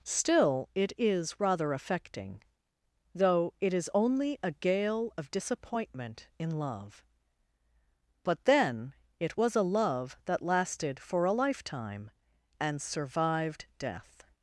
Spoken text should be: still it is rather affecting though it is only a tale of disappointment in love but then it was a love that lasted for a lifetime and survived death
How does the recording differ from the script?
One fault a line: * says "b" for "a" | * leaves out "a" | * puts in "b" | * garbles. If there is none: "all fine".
* says "gale" for "tale"